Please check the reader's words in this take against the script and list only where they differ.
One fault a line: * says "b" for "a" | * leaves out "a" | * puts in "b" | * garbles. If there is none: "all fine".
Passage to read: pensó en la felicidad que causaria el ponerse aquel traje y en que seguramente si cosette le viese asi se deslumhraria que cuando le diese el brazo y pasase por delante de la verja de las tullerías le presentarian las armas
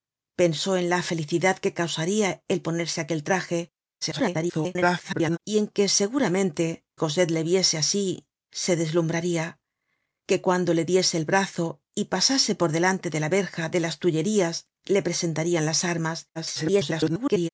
* garbles
* leaves out "si"
* garbles